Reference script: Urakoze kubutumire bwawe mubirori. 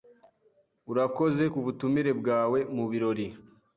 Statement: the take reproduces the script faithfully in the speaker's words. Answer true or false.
true